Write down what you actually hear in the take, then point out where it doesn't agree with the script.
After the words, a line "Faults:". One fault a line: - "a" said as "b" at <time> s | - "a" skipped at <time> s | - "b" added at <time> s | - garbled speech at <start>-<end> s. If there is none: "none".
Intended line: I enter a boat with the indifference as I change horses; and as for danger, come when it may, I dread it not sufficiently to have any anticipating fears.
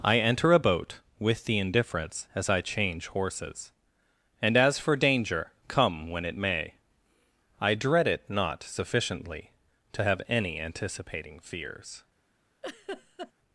I enter a boat with the indifference as I change horses; and as for danger, come when it may, I dread it not sufficiently to have any anticipating fears.
Faults:
none